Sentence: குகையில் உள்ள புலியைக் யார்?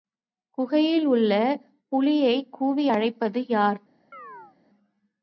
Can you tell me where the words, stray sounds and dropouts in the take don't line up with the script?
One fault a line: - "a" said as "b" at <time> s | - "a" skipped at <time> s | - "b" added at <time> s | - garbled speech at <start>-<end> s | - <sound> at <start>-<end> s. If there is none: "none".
- "கூவி அழைப்பது" added at 2.5 s
- chirp at 4.1-4.6 s